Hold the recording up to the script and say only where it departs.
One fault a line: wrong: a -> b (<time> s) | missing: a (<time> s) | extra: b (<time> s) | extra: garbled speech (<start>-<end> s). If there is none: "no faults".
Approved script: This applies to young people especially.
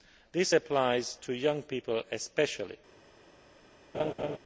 no faults